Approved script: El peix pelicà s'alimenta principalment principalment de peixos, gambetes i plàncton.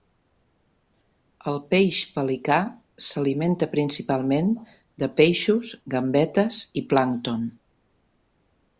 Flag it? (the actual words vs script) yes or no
yes